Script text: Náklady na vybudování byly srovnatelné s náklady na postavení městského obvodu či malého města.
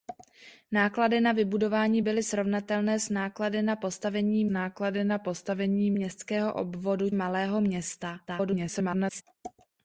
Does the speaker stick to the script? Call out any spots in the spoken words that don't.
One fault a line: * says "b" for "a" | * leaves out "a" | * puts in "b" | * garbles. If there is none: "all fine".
* puts in "náklady na postavení"
* leaves out "či"
* garbles